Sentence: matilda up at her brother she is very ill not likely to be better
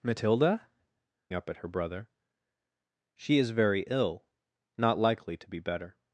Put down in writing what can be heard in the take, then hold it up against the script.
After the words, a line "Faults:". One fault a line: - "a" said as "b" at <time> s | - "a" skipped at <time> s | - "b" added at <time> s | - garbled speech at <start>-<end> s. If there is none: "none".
matilda up at her brother she is very ill not likely to be better
Faults:
none